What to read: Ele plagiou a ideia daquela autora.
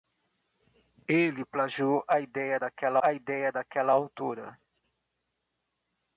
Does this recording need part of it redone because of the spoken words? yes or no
yes